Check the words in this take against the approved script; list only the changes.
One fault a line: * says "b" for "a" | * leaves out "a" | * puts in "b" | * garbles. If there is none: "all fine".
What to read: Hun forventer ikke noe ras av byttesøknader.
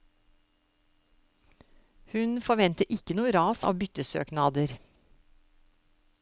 all fine